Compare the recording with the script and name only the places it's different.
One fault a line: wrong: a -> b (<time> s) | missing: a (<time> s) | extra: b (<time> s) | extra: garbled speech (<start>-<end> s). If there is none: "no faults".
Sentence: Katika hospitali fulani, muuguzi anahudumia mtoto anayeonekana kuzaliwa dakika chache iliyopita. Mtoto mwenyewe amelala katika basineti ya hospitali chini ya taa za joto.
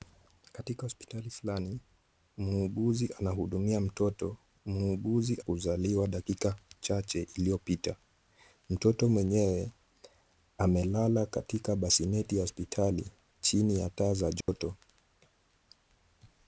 wrong: anayeonekana -> muuguzi (4.7 s)